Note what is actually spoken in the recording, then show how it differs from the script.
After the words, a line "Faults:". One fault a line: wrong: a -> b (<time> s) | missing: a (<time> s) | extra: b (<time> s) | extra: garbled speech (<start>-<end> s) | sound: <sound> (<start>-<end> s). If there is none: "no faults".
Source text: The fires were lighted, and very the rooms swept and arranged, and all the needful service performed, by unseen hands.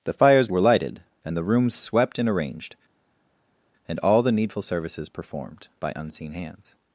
The fires were lighted, and the rooms swept and arranged, and all the needful services performed, by unseen hands.
Faults:
missing: very (1.4 s)
wrong: service -> services (4.6 s)